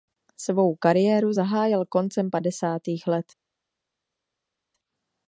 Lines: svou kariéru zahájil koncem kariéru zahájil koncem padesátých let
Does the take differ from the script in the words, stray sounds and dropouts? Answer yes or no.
yes